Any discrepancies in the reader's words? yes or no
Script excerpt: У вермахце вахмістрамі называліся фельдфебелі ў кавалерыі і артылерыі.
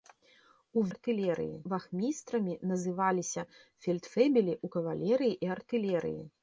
yes